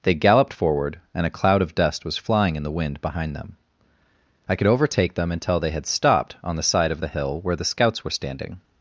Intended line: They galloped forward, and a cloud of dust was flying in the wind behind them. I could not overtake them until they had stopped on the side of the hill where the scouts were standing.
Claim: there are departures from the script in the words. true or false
true